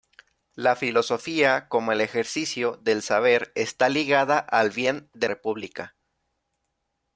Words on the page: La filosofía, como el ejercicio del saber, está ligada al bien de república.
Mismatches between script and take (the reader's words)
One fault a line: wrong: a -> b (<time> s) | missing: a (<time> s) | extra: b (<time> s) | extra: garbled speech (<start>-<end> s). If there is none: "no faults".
no faults